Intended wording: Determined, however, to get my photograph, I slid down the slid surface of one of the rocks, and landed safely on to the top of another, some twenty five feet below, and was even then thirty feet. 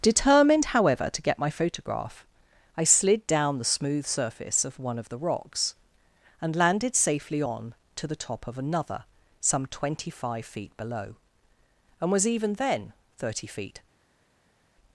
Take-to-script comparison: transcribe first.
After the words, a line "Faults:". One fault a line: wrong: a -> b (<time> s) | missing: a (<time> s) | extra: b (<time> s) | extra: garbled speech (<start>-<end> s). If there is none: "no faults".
Determined, however, to get my photograph, I slid down the smooth surface of one of the rocks, and landed safely on to the top of another, some twenty five feet below, and was even then thirty feet.
Faults:
wrong: slid -> smooth (3.6 s)